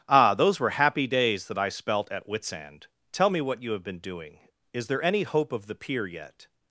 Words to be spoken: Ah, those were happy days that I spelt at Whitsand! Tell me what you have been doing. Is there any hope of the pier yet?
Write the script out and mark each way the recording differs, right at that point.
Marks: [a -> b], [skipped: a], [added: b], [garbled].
Ah, those were happy days that I spelt at Whitsand! Tell me what you have been doing. Is there any hope of the pier yet?